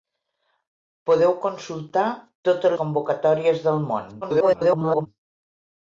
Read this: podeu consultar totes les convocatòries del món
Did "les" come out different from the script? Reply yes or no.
yes